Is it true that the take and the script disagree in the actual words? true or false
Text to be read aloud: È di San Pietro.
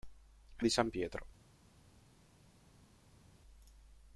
false